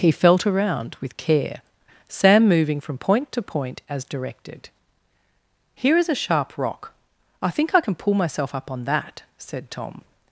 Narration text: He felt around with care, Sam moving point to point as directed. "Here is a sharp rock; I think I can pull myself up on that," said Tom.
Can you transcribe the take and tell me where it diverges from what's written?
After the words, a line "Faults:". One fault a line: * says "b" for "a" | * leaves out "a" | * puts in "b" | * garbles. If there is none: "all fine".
He felt around with care, Sam moving from point to point as directed. "Here is a sharp rock; I think I can pull myself up on that," said Tom.
Faults:
* puts in "from"